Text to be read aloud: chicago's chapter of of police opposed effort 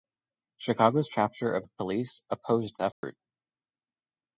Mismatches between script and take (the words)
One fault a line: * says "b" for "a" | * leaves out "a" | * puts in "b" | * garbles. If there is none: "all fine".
all fine